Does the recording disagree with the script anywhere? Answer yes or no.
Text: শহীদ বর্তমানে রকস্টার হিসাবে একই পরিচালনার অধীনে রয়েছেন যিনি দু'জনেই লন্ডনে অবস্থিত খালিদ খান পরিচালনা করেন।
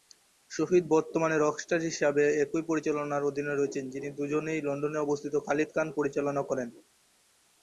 no